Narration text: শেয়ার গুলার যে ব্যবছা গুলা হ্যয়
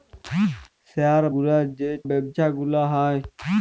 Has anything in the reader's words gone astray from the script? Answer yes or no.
no